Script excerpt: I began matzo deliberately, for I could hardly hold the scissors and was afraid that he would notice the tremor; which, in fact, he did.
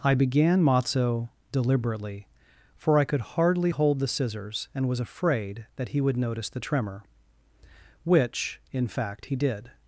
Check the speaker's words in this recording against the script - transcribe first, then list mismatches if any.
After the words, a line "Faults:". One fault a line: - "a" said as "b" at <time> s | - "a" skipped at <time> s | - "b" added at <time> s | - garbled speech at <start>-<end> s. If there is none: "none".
I began matzo deliberately, for I could hardly hold the scissors and was afraid that he would notice the tremor; which, in fact, he did.
Faults:
none